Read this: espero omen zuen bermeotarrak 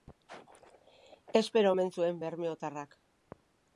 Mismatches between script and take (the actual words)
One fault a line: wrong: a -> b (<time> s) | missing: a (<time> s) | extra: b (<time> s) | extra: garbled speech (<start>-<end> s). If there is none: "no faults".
no faults